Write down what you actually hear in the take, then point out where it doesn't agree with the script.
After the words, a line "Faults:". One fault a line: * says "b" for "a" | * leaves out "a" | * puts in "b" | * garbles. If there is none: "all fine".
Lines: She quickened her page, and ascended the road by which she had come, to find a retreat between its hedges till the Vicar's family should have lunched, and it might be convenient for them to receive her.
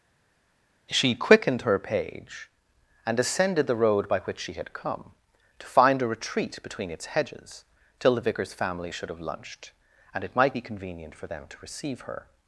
She quickened her page, and ascended the road by which she had come, to find a retreat between its hedges till the Vicar's family should have lunched, and it might be convenient for them to receive her.
Faults:
all fine